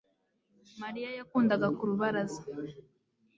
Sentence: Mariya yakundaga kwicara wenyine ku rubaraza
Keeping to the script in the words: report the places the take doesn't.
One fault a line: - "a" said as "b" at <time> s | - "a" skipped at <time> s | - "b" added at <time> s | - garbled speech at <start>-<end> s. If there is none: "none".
- "kwicara wenyine" skipped at 1.7 s